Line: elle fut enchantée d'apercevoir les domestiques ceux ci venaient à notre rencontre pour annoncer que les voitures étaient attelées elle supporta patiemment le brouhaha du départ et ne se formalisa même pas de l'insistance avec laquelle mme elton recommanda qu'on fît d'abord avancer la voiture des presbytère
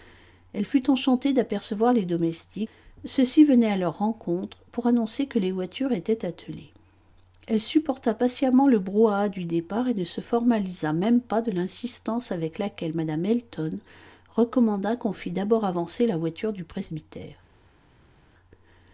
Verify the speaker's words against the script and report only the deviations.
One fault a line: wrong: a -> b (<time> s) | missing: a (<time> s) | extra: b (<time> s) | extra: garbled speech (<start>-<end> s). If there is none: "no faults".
wrong: notre -> leur (3.8 s)
wrong: des -> du (16.5 s)